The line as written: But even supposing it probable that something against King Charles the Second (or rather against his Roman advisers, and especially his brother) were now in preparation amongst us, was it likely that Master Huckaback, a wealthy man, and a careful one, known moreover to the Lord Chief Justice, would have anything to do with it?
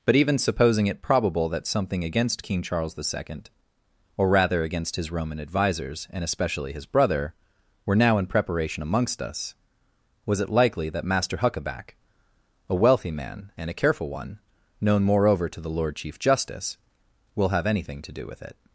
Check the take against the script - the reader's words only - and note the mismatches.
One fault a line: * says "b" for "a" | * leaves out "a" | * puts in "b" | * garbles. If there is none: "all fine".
* says "will" for "would"